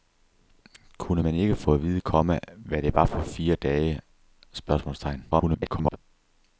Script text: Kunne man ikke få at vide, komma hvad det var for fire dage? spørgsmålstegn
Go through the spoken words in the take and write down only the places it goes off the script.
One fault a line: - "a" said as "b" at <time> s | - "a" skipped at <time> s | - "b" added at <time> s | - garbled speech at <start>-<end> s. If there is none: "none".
- garbled speech at 5.3-6.0 s